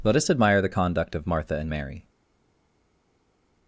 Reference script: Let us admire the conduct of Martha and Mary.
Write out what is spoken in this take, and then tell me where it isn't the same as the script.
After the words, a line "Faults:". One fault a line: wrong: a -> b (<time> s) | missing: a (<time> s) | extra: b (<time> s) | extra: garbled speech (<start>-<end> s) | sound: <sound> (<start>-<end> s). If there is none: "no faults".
Let us admire the conduct of Martha and Mary.
Faults:
no faults